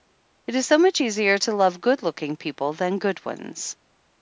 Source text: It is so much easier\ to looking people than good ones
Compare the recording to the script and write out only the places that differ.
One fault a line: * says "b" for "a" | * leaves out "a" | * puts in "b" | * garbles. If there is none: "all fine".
* puts in "love good"